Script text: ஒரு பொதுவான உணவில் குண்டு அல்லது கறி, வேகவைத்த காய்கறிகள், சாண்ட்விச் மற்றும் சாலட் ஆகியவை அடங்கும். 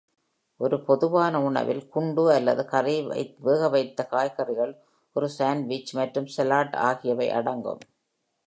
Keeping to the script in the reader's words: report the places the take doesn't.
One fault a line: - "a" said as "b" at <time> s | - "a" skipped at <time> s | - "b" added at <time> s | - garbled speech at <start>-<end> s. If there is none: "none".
- "ஒரு" added at 5.1 s